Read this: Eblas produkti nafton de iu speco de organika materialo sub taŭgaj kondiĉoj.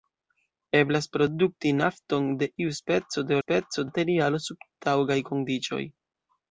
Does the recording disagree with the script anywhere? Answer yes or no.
yes